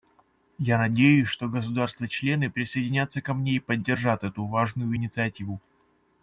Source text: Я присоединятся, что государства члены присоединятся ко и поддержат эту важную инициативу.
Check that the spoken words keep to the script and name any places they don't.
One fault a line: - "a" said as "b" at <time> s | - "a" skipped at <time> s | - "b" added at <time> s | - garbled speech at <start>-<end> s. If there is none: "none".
- "присоединятся" said as "надеюсь" at 0.8 s
- "мне" added at 3.4 s